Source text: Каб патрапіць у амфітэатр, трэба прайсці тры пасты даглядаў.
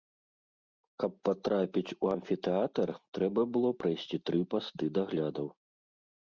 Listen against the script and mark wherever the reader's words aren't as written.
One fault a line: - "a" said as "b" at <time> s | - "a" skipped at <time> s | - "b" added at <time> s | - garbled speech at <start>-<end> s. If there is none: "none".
- "было" added at 3.6 s